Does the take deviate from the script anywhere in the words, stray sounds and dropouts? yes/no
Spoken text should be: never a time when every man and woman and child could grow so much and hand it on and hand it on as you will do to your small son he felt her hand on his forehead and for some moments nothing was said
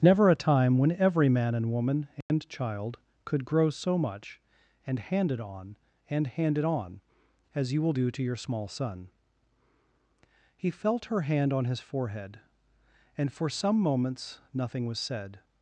yes